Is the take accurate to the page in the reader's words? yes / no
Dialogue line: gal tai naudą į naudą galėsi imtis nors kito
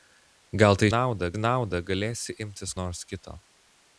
yes